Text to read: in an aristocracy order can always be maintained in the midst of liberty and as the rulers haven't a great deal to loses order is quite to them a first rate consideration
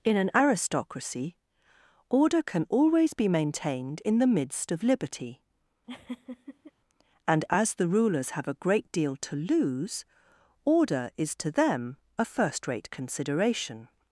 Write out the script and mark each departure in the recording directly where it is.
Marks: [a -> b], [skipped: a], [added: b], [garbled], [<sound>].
in an aristocracy order can always be maintained in the midst of liberty [laugh] and as the rulers [haven't -> have] a great deal to [loses -> lose] order is [skipped: quite] to them a first rate consideration